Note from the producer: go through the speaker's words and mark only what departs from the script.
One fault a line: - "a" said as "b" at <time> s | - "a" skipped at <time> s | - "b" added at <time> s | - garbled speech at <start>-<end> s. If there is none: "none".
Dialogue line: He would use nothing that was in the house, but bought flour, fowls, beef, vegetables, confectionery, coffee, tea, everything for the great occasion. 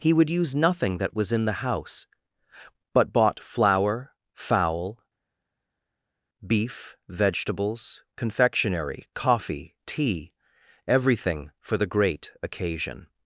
- "fowls" said as "fowl" at 4.3 s